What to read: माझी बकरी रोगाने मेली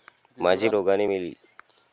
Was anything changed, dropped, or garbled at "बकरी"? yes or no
yes